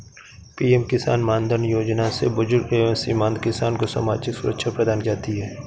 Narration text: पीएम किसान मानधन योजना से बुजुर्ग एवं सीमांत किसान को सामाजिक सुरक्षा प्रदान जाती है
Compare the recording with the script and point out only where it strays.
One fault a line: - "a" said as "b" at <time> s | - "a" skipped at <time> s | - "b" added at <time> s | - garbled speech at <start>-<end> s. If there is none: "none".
none